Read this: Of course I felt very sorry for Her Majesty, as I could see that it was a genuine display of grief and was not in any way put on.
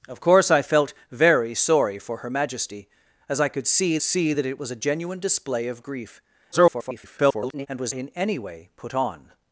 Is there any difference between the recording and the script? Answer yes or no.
yes